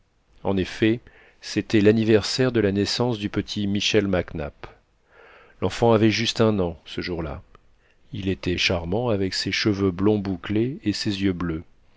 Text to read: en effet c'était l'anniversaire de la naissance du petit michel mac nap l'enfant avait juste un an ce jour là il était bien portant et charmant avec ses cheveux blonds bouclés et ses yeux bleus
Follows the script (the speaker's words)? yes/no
no